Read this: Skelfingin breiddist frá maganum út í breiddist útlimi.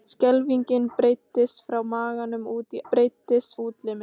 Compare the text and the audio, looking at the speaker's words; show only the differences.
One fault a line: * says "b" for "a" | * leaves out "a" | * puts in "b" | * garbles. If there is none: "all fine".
all fine